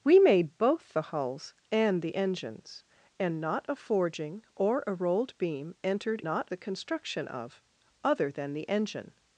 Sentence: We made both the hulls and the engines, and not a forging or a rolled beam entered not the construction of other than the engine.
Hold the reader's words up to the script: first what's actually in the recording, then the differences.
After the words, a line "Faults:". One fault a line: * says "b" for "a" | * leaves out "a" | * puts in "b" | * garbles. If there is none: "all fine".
We made both the hulls and the engines, and not a forging or a rolled beam entered not the construction of other than the engine.
Faults:
all fine